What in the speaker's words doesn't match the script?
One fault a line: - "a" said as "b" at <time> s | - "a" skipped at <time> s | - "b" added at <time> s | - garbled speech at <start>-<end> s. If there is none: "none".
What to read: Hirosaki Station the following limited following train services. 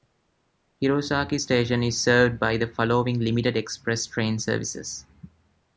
- "is served by" added at 1.8 s
- "following" said as "express" at 3.6 s